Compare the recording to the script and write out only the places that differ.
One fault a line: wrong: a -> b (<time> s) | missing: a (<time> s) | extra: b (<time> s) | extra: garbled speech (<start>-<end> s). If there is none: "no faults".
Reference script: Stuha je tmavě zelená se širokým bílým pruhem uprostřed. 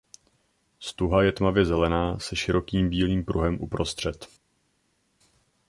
no faults